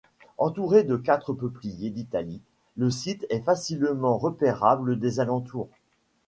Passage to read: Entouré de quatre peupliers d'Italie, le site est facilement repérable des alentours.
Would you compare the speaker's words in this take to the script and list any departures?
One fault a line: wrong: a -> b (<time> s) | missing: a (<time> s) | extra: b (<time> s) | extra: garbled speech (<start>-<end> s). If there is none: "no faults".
no faults